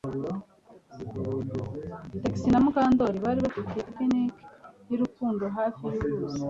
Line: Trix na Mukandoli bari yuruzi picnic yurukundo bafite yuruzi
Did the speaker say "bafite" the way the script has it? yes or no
no